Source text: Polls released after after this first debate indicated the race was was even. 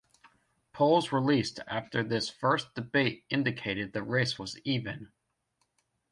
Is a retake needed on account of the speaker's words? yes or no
yes